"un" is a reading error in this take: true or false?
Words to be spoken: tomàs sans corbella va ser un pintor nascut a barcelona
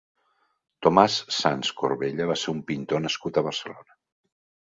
false